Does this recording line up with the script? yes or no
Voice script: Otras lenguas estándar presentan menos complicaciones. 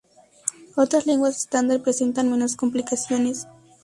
yes